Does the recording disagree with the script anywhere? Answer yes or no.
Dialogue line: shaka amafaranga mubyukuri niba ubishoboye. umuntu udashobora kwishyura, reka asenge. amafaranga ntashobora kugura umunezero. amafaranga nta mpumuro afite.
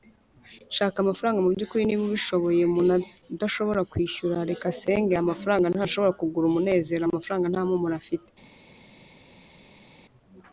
no